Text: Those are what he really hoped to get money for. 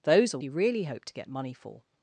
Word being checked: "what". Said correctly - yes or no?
no